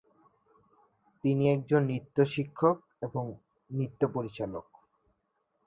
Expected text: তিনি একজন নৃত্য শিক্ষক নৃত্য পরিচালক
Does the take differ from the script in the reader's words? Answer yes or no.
yes